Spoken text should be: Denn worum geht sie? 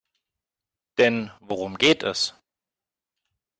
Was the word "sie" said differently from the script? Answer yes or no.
yes